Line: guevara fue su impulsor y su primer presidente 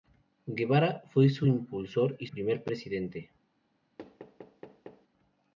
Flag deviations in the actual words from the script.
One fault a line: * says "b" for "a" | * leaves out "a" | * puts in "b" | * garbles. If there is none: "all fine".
* leaves out "su"